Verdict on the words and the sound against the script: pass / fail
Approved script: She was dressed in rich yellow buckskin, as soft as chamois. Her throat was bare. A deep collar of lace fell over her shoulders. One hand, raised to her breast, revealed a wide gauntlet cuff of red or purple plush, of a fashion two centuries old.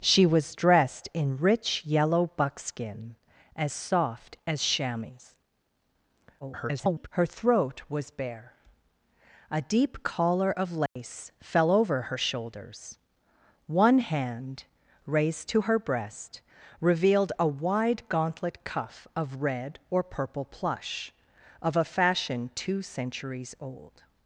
fail